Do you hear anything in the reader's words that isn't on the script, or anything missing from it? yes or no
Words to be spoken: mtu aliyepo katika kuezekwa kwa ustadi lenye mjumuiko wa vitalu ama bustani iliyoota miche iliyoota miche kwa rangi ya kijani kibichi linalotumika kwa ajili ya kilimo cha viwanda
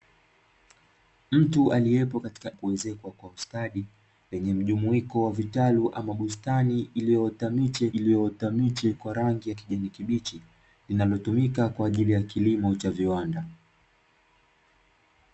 no